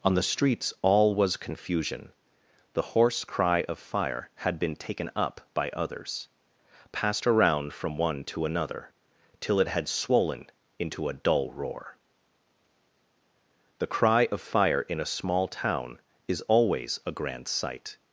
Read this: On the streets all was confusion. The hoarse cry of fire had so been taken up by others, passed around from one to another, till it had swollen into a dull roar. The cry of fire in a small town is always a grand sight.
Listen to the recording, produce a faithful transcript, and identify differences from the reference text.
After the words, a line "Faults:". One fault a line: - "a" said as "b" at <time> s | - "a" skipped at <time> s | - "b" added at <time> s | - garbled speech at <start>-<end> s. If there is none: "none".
On the streets all was confusion. The hoarse cry of fire had been taken up by others, passed around from one to another, till it had swollen into a dull roar. The cry of fire in a small town is always a grand sight.
Faults:
- "so" skipped at 4.6 s